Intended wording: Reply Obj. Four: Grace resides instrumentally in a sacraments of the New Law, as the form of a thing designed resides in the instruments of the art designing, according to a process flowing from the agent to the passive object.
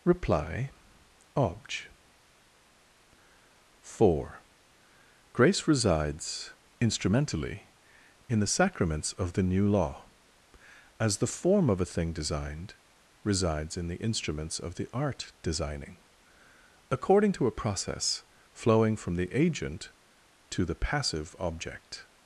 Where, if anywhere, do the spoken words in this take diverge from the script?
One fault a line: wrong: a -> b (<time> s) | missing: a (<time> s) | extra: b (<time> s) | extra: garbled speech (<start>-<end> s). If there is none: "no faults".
wrong: a -> the (8.4 s)